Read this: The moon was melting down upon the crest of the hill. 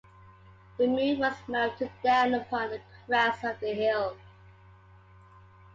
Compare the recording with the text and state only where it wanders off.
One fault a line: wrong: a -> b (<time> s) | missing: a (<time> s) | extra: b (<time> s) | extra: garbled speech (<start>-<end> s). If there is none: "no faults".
no faults